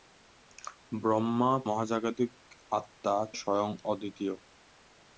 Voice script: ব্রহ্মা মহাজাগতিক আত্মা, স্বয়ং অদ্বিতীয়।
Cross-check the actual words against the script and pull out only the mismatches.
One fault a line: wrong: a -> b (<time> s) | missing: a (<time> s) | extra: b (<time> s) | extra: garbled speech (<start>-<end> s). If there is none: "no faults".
no faults